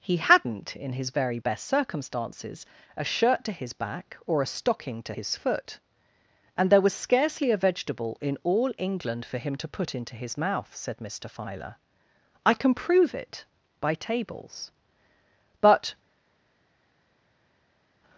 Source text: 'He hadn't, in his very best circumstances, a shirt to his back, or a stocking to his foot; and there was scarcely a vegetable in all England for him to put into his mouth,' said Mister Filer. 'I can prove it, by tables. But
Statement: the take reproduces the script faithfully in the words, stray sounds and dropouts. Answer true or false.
true